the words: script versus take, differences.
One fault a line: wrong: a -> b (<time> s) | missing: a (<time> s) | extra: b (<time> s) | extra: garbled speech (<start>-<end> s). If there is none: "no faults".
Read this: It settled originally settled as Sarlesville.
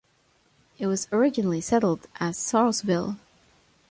wrong: settled -> was (0.9 s)